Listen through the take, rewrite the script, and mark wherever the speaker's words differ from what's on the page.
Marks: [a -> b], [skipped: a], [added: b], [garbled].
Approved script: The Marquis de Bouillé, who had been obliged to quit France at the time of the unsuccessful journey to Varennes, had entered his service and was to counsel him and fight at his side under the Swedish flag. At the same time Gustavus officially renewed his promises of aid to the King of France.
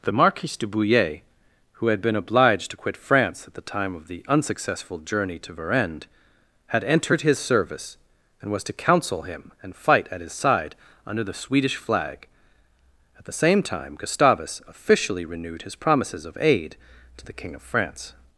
The Marquis de Bouillé, who had been obliged to quit France at the time of the unsuccessful journey to Varennes, had entered his service and was to counsel him and fight at his side under the Swedish flag. At the same time Gustavus officially renewed his promises of aid to the King of France.